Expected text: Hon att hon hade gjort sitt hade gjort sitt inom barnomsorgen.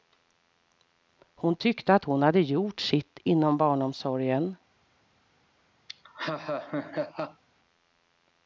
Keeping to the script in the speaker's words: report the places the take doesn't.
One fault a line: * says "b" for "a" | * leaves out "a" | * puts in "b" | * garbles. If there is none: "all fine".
* puts in "tyckte"
* leaves out "hade gjort sitt"